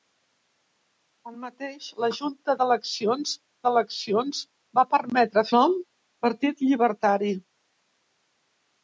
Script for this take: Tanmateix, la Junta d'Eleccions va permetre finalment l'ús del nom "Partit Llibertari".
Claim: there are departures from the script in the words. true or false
true